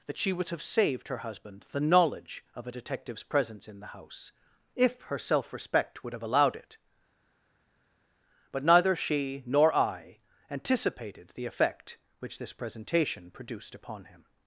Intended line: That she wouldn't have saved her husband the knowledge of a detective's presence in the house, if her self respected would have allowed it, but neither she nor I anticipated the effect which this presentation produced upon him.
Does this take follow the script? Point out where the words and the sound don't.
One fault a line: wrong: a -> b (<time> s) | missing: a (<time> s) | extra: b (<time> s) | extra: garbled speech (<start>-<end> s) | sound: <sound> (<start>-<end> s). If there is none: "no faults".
wrong: wouldn't -> would (0.3 s)
wrong: respected -> respect (5.5 s)